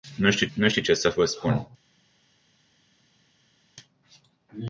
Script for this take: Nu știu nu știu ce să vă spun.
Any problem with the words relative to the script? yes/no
no